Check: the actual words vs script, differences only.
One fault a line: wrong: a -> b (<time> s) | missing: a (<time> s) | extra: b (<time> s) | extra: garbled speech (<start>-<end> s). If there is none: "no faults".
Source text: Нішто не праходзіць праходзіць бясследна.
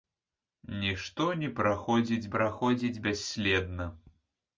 no faults